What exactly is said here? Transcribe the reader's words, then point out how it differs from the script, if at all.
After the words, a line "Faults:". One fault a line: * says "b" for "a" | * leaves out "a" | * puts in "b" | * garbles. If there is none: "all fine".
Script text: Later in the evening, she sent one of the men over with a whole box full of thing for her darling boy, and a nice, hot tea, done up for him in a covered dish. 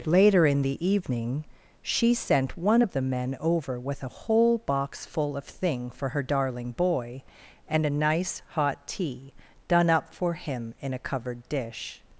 Later in the evening, she sent one of the men over with a whole box full of thing for her darling boy, and a nice, hot tea, done up for him in a covered dish.
Faults:
all fine